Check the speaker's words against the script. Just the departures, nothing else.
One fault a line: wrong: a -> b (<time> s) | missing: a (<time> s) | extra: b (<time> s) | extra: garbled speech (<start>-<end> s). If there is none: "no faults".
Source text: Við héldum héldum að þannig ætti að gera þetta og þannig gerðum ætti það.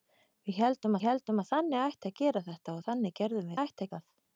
no faults